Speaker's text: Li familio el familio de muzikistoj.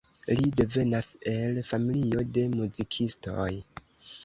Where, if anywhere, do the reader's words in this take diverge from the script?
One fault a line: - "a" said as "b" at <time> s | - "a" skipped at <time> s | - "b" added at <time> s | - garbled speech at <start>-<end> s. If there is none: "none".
- "familio" said as "devenas" at 0.6 s